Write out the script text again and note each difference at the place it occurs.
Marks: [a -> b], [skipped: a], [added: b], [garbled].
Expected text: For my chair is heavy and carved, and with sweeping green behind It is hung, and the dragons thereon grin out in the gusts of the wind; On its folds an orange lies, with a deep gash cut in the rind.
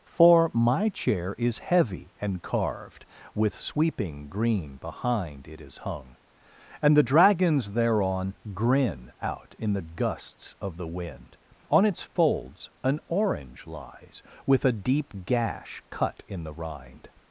For my chair is heavy and carved, [skipped: and] with sweeping green behind It is hung, and the dragons thereon grin out in the gusts of the wind; On its folds an orange lies, with a deep gash cut in the rind.